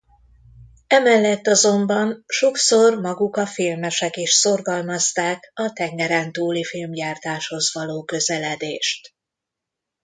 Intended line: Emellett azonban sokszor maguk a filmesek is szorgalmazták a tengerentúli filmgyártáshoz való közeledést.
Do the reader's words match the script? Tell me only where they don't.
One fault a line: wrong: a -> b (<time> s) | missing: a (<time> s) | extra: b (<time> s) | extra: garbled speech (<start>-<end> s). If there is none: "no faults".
no faults